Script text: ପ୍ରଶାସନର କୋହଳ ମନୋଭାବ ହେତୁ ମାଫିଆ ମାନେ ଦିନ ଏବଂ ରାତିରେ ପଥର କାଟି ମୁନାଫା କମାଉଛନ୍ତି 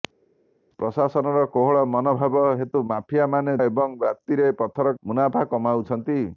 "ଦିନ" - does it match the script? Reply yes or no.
no